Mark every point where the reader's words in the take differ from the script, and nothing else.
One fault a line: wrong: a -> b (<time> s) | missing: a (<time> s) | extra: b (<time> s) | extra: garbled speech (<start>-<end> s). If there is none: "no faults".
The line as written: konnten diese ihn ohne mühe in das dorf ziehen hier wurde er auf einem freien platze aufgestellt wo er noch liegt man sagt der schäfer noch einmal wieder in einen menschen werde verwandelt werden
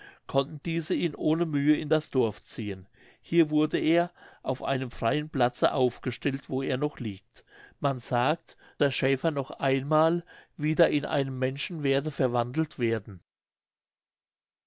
no faults